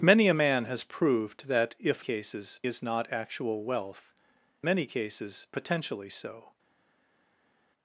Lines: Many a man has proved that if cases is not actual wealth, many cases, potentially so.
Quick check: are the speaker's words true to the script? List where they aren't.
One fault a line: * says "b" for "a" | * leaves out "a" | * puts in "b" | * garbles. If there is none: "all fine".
all fine